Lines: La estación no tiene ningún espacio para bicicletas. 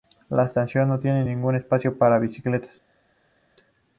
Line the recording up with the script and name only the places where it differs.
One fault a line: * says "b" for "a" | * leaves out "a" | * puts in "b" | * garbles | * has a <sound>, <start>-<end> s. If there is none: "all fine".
all fine